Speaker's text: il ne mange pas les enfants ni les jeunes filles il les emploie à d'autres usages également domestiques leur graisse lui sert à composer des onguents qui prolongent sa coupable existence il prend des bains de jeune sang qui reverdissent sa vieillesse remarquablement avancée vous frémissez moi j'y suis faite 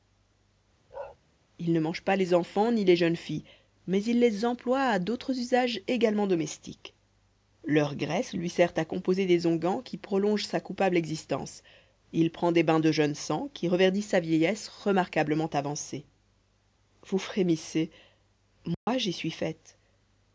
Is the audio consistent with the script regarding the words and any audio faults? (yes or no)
no